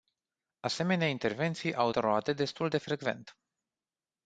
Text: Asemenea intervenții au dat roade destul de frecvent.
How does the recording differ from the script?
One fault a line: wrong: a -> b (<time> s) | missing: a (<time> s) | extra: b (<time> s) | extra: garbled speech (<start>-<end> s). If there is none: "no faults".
missing: dat (1.9 s)